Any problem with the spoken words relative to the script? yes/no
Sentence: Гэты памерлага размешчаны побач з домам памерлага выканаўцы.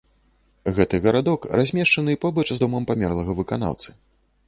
yes